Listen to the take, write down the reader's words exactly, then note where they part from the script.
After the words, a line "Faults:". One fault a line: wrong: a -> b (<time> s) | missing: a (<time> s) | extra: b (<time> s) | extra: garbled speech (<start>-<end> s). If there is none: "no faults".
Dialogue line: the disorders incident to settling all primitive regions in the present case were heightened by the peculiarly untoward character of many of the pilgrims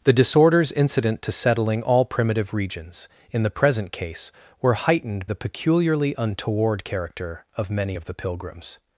the disorders incident to settling all primitive regions in the present case were heightened the peculiarly untoward character of many of the pilgrims
Faults:
missing: by (5.3 s)